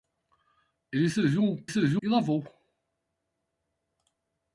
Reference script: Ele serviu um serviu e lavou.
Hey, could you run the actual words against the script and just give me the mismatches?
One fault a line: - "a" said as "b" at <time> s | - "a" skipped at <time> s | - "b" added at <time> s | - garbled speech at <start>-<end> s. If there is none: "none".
none